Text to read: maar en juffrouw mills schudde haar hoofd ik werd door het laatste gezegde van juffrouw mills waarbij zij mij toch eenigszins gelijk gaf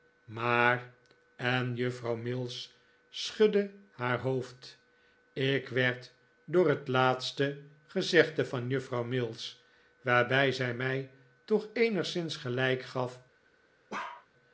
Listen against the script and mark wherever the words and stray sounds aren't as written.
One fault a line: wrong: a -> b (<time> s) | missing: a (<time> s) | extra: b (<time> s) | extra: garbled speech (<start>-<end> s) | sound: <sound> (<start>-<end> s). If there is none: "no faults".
sound: bark (13.9-14.3 s)